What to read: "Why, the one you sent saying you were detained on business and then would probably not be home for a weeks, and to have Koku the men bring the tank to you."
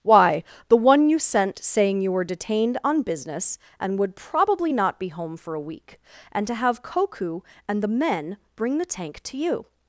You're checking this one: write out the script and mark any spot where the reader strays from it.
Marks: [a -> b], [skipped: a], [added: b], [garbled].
"Why, the one you sent saying you were detained on business and [skipped: then] would probably not be home for a [weeks, -> week] and to have Koku [added: and] the men bring the tank to you."